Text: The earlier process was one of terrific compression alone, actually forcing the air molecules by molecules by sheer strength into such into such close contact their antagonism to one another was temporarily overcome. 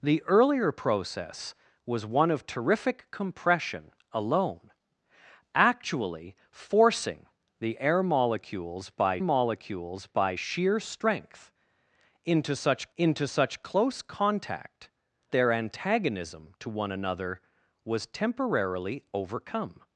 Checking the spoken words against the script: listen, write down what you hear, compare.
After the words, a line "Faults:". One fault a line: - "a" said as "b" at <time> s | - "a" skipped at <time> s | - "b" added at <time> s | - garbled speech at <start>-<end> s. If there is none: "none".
The earlier process was one of terrific compression alone, actually forcing the air molecules by molecules by sheer strength into such into such close contact their antagonism to one another was temporarily overcome.
Faults:
none